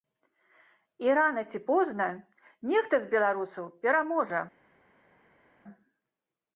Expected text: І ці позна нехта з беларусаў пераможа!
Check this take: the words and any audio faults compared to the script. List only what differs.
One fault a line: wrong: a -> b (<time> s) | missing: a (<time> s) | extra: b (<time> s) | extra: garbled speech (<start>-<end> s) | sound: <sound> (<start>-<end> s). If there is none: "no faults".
extra: рана (1.2 s)